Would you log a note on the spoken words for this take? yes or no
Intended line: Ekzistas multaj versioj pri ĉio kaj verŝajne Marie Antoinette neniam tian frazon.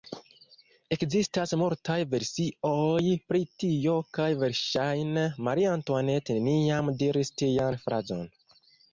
yes